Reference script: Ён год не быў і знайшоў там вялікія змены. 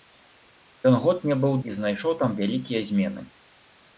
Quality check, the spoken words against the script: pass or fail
pass